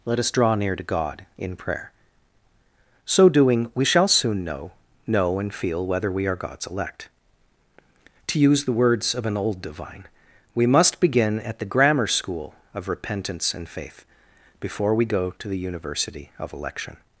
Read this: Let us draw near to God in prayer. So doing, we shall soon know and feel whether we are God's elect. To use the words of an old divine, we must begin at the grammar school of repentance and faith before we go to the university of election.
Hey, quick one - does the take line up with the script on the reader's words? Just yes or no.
no